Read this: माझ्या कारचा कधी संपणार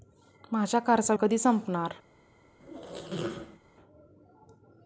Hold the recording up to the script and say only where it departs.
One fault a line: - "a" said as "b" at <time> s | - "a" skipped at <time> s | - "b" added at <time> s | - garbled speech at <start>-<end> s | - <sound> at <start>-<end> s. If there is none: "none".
- squeak at 2.6-3.6 s